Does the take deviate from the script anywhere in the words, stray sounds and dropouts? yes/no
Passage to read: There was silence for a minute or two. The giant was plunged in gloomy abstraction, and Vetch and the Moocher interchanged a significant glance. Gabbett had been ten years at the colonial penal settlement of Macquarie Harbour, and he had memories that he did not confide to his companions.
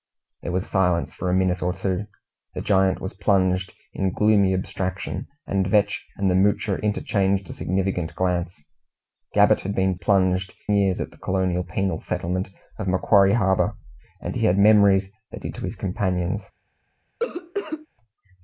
yes